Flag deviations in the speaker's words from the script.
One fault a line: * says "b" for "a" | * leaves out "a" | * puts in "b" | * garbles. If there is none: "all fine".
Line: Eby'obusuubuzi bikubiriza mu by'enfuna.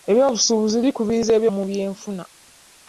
all fine